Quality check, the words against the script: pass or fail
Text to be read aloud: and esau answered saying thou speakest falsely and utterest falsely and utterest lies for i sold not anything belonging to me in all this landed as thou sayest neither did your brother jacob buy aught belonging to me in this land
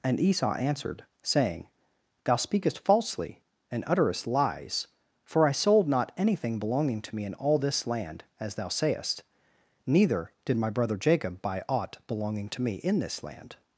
fail